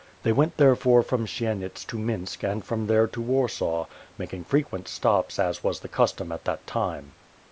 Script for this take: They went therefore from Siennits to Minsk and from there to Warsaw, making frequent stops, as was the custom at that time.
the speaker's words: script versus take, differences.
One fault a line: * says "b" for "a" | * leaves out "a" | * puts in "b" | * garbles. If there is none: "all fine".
all fine